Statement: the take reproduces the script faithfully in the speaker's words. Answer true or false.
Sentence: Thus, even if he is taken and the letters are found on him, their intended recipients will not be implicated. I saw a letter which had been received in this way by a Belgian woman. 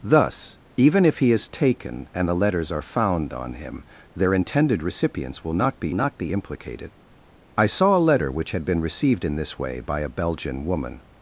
false